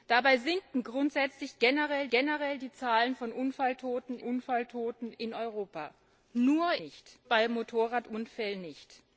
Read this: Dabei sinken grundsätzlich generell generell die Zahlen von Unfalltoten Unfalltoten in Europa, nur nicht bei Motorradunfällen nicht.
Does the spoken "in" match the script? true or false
true